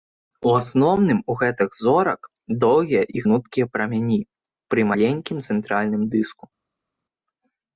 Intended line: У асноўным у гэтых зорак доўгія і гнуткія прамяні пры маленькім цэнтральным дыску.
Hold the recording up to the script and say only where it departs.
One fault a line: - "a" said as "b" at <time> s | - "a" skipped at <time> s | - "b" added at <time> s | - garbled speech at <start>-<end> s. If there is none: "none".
none